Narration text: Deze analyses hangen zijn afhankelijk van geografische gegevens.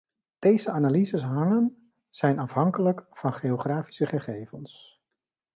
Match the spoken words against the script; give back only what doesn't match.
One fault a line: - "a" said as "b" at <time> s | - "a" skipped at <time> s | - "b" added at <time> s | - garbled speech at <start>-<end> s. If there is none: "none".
none